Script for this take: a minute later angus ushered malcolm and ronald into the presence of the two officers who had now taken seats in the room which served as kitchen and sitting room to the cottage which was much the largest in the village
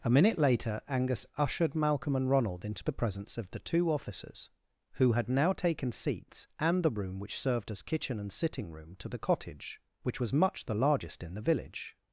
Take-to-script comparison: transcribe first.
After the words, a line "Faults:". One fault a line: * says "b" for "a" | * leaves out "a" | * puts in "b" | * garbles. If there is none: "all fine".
a minute later angus ushered malcolm and ronald into the presence of the two officers who had now taken seats and the room which served as kitchen and sitting room to the cottage which was much the largest in the village
Faults:
* says "and" for "in"